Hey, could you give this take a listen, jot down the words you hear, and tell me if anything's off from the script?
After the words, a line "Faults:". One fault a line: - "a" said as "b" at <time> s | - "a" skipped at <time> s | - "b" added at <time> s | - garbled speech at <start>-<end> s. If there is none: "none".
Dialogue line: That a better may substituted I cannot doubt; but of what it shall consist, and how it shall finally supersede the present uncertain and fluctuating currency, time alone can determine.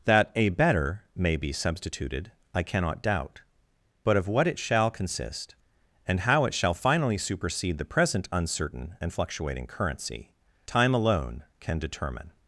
That a better may be substituted I cannot doubt; but of what it shall consist, and how it shall finally supersede the present uncertain and fluctuating currency, time alone can determine.
Faults:
- "be" added at 1.4 s